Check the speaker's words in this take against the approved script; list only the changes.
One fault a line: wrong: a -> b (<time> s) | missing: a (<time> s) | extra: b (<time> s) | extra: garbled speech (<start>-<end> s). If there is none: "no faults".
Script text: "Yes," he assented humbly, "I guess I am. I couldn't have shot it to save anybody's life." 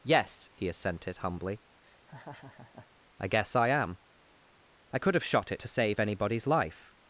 wrong: couldn't -> could (5.0 s)